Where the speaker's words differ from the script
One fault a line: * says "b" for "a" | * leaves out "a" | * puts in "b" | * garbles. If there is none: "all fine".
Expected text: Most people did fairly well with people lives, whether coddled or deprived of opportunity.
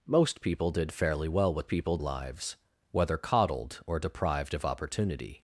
all fine